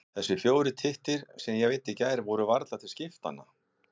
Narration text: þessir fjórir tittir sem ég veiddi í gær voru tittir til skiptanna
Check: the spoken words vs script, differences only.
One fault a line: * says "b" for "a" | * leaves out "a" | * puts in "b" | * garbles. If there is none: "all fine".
* says "varla" for "tittir"